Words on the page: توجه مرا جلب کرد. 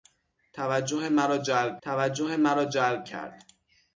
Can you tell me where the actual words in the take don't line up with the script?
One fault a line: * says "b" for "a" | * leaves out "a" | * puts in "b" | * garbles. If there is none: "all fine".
* puts in "توجه مرا جلب"